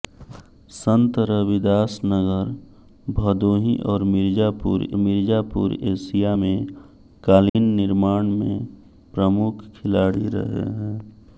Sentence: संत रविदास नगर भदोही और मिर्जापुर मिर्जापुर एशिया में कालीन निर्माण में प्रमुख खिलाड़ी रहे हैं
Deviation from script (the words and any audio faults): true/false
true